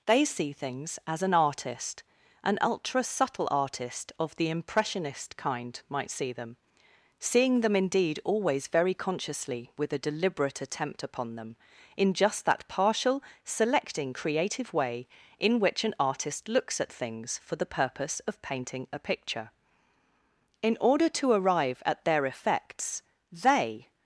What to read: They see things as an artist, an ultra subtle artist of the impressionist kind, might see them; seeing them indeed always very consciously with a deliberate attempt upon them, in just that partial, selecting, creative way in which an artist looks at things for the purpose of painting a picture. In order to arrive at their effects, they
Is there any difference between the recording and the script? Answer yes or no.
no